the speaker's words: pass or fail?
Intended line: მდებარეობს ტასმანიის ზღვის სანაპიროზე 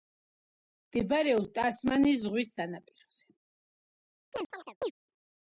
pass